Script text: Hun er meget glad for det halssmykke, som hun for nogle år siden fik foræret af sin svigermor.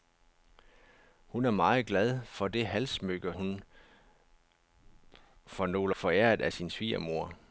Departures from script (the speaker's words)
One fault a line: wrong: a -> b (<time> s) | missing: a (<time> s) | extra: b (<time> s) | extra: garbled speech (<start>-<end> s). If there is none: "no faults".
missing: som (3.4 s)
missing: år siden fik (6.0 s)